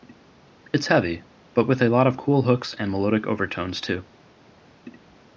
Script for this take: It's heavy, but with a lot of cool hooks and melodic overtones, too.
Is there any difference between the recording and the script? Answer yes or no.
no